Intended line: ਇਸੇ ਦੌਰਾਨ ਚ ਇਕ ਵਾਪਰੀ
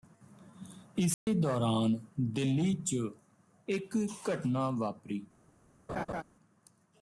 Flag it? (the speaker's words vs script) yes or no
yes